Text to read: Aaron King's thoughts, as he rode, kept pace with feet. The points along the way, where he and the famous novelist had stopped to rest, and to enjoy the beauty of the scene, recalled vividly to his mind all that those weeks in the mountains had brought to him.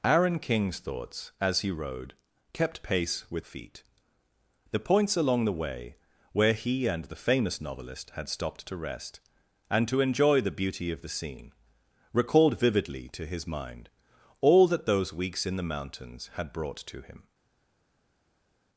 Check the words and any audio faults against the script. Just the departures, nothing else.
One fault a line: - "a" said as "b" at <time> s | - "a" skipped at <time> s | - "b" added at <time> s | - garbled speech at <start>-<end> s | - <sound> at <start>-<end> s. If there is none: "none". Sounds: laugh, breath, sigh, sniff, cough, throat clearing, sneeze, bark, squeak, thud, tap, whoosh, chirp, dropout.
none